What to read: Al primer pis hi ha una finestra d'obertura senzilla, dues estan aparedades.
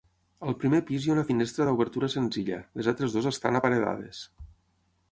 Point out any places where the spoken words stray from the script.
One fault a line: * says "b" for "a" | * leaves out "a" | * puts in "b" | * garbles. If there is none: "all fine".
* puts in "les altres"